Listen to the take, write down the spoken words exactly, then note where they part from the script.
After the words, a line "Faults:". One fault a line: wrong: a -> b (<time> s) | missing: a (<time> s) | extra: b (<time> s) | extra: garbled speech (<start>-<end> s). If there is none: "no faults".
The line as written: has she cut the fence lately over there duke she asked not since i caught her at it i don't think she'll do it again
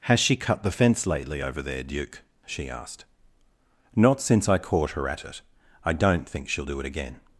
has she cut the fence lately over there duke she asked not since i caught her at it i don't think she'll do it again
Faults:
no faults